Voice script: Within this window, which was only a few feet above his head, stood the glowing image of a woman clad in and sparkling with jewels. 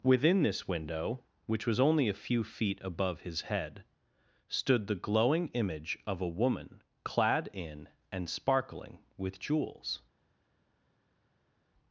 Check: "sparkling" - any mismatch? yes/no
no